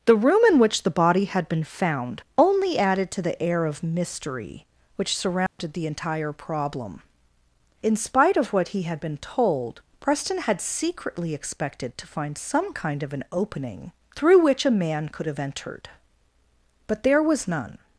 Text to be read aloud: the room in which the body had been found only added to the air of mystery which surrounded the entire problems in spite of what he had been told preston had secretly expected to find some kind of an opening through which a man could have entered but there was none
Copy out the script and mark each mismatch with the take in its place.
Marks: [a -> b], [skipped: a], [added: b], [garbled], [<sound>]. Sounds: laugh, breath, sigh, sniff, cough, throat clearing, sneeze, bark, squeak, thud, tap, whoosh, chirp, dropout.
the room in which the body had been found only added to the air of mystery which surrounded [dropout] the entire [problems -> problem] in spite of what he had been told preston had secretly expected to find some kind of an opening through which a man could have entered but there was none